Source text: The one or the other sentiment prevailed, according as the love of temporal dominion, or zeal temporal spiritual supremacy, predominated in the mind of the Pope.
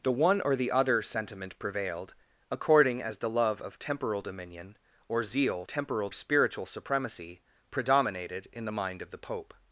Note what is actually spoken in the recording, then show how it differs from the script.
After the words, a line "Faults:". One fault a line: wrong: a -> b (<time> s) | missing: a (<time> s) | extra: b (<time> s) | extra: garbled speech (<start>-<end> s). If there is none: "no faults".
The one or the other sentiment prevailed, according as the love of temporal dominion, or zeal temporal spiritual supremacy, predominated in the mind of the Pope.
Faults:
no faults